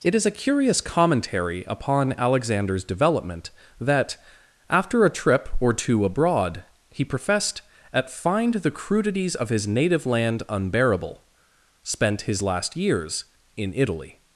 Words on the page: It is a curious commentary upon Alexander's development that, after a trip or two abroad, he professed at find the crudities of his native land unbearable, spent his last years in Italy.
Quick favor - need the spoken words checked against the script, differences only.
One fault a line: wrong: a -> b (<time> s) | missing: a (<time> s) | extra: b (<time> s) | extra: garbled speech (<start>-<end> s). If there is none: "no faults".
no faults